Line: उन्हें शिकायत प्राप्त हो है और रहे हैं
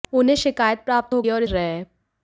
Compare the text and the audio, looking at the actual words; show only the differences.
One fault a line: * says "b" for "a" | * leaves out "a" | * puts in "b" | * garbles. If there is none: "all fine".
all fine